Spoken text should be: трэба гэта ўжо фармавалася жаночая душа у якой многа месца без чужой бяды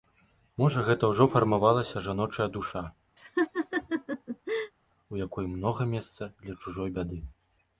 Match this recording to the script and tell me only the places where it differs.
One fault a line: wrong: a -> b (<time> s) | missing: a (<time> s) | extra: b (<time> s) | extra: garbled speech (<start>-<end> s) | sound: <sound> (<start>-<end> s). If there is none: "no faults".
wrong: трэба -> можа (0.6 s)
sound: laugh (3.2-4.7 s)
wrong: без -> для (6.4 s)